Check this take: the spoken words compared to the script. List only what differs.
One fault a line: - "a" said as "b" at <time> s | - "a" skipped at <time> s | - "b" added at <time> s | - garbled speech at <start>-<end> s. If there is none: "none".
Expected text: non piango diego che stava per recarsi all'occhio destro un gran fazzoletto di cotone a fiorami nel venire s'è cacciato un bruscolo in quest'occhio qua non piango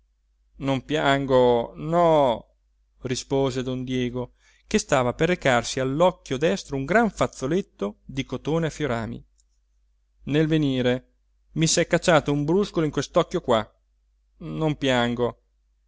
- "no rispose don" added at 1.8 s
- "mi" added at 11.5 s